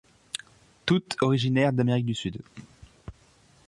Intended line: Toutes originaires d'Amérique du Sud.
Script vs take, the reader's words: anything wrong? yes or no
no